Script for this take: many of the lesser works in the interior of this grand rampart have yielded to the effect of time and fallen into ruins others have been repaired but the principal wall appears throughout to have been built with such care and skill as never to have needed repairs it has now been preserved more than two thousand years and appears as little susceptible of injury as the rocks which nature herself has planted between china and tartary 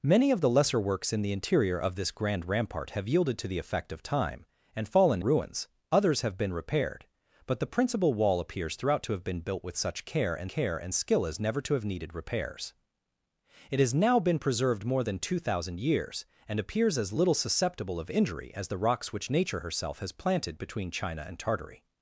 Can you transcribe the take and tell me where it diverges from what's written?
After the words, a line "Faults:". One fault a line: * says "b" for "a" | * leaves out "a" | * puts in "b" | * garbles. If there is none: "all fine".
many of the lesser works in the interior of this grand rampart have yielded to the effect of time and fallen ruins others have been repaired but the principal wall appears throughout to have been built with such care and care and skill as never to have needed repairs it has now been preserved more than two thousand years and appears as little susceptible of injury as the rocks which nature herself has planted between china and tartary
Faults:
* leaves out "into"
* puts in "care and"